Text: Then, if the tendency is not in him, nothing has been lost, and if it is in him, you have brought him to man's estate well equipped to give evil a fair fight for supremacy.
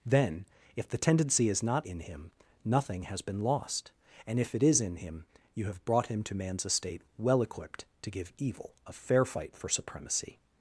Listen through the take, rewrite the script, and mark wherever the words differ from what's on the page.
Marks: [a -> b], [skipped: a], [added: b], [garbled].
Then, if the tendency is not in him, nothing has been lost, and if it is in him, you have brought him to man's estate well equipped to give evil a fair fight for supremacy.